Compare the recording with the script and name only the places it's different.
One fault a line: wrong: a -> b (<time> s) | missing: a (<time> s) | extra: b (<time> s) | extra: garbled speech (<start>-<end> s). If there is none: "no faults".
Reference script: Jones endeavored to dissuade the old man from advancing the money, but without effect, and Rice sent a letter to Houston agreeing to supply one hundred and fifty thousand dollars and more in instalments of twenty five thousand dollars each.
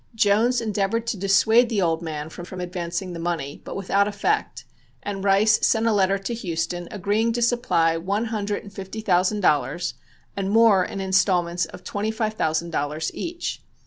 extra: from (2.4 s)